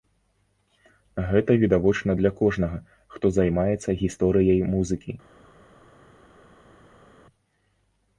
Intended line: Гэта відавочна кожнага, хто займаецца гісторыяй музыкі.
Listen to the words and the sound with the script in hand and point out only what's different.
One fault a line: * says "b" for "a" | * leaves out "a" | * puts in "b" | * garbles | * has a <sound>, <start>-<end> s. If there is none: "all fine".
* puts in "для"